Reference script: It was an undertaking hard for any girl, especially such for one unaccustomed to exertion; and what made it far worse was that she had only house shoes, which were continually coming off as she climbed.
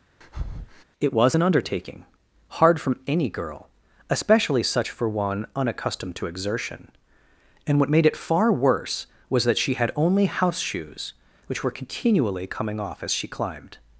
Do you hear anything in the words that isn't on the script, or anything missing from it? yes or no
yes